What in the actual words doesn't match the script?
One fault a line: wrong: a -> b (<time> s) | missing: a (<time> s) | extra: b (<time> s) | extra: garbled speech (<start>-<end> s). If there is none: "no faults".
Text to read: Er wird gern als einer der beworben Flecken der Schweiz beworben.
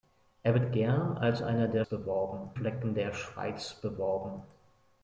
no faults